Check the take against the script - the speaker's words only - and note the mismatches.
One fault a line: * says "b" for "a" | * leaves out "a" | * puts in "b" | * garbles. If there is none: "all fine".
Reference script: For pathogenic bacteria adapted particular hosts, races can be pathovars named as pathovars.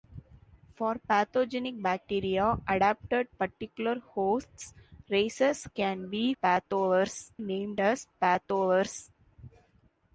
all fine